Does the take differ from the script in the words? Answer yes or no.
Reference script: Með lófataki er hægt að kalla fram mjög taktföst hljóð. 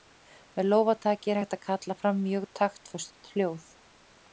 no